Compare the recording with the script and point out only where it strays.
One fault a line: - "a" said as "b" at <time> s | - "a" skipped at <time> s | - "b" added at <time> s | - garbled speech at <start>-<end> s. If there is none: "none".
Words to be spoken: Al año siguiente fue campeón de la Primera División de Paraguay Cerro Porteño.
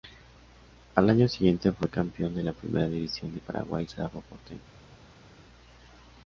none